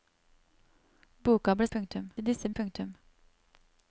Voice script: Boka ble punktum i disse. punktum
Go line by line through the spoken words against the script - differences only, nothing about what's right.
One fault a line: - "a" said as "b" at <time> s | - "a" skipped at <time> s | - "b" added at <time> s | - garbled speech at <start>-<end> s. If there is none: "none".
none